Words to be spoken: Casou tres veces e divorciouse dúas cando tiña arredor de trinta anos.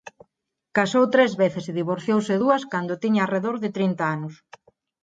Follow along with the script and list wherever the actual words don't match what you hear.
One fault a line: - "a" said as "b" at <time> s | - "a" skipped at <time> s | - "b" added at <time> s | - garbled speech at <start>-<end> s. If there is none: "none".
none